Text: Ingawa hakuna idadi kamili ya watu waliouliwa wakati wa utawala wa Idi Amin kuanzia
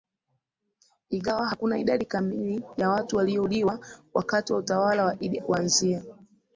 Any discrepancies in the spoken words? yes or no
yes